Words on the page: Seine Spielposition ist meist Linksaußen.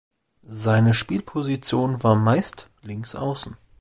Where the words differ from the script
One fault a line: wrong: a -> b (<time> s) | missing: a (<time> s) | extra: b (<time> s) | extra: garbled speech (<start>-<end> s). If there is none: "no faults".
wrong: ist -> war (2.0 s)